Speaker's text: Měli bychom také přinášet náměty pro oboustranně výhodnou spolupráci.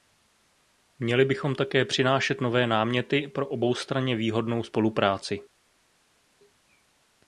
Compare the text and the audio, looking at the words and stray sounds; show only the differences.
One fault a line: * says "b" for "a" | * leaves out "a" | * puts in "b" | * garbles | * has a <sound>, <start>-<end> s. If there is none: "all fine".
* puts in "nové"